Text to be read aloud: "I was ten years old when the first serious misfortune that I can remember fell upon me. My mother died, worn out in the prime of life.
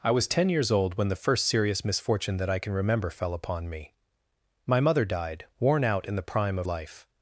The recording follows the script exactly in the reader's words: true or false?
true